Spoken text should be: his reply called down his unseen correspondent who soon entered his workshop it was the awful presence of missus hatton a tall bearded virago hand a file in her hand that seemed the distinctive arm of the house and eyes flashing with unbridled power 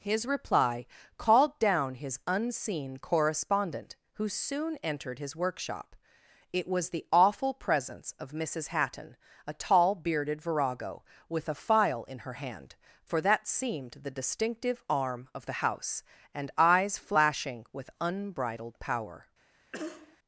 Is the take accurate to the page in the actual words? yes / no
no